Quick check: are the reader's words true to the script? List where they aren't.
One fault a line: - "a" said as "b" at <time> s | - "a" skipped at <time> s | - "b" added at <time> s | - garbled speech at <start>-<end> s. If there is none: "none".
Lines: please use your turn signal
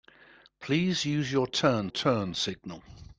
- "turn" added at 1.9 s